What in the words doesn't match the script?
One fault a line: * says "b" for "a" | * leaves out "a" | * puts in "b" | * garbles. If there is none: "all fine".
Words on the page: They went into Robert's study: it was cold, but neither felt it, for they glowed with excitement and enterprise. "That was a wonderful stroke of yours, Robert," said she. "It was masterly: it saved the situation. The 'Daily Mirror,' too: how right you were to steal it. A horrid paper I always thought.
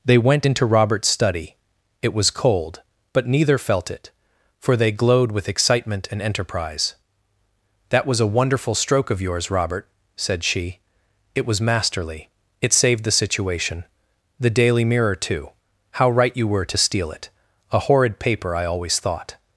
all fine